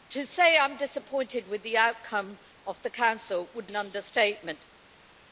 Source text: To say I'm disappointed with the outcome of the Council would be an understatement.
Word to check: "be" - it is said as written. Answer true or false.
false